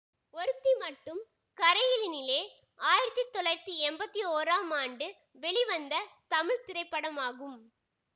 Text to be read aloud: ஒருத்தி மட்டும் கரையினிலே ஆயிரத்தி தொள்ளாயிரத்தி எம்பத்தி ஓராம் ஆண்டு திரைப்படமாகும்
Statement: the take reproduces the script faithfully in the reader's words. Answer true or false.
false